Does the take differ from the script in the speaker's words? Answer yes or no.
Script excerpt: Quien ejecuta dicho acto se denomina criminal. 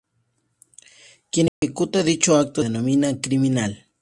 yes